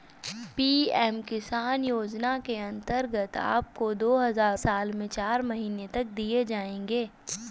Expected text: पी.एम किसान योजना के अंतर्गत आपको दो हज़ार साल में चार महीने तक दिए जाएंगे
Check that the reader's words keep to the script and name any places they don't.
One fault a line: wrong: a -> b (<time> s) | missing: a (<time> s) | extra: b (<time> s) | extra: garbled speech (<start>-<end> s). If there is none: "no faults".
no faults